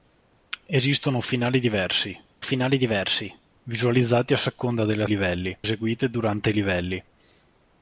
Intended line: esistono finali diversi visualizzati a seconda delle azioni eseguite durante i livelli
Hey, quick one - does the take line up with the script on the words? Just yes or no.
no